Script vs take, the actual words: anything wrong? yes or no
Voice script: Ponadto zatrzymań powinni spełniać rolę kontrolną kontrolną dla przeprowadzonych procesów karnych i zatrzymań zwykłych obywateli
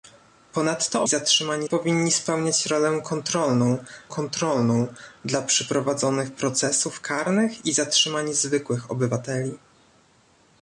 no